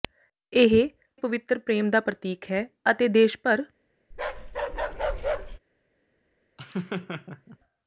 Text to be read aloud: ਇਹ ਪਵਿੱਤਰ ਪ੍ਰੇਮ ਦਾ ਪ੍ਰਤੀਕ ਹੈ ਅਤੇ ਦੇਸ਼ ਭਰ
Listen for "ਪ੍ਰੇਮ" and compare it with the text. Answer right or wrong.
right